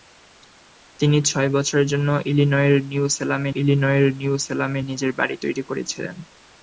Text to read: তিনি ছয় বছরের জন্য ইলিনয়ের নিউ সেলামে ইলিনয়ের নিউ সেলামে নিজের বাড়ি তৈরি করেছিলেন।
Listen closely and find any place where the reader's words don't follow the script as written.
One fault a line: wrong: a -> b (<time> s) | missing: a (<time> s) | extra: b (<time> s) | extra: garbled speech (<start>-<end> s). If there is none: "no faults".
no faults